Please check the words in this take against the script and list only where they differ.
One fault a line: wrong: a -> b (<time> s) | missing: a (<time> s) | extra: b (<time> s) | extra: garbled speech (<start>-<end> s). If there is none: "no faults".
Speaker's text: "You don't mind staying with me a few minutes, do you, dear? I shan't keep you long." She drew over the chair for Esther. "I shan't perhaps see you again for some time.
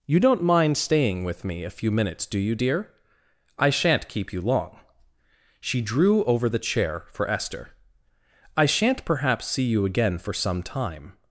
no faults